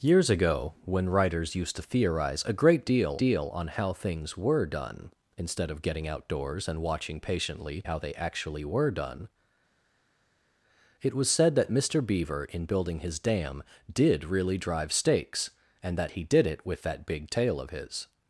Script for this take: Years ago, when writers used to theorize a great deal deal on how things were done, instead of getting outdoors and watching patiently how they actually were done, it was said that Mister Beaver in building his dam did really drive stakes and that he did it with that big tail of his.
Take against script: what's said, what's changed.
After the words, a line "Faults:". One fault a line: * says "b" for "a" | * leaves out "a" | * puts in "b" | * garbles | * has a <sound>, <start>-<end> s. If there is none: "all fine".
Years ago, when writers used to theorize a great deal deal on how things were done, instead of getting outdoors and watching patiently how they actually were done, it was said that Mister Beaver in building his dam did really drive stakes and that he did it with that big tail of his.
Faults:
all fine